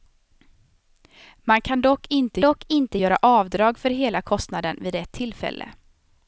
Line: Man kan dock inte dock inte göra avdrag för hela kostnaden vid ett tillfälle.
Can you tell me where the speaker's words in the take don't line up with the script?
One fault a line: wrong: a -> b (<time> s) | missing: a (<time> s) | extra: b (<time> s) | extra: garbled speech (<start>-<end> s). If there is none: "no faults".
no faults